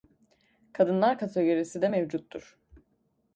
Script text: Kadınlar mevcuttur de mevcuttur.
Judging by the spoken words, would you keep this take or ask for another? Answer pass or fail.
fail